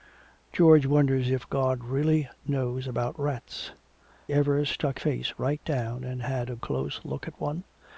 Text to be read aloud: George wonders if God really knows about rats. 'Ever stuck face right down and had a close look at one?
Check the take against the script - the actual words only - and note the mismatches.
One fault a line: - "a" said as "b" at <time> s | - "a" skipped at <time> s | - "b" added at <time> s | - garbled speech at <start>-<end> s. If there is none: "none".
none